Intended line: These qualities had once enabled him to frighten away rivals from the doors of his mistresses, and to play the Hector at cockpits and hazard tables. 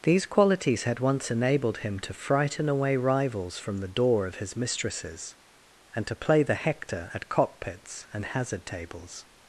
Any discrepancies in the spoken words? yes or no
yes